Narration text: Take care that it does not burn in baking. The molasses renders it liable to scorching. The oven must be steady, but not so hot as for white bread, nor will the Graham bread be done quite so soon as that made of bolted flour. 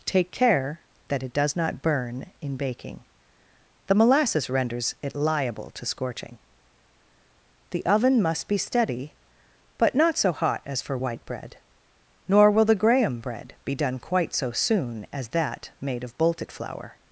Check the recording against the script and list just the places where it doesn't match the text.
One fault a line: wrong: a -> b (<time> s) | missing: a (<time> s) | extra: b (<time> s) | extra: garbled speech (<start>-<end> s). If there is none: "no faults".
no faults